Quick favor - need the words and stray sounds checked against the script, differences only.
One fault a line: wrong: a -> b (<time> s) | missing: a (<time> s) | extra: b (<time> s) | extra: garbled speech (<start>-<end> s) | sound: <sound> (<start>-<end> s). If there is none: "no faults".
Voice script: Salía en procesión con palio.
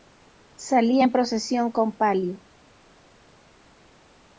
no faults